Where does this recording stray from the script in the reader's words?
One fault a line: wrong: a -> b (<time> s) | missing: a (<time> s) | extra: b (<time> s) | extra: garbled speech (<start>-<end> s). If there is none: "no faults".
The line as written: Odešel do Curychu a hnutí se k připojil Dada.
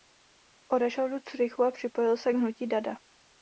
wrong: hnutí -> připojil (1.7 s)
wrong: připojil -> hnutí (2.3 s)